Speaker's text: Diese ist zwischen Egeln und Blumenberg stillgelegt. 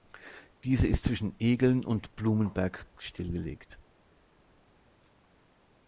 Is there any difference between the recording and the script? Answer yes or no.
no